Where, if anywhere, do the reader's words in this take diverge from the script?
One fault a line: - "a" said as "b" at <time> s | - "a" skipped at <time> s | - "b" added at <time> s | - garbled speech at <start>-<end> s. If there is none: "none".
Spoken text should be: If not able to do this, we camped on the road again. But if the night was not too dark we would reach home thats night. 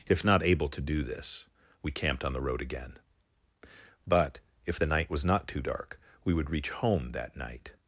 - "thats" said as "that" at 7.1 s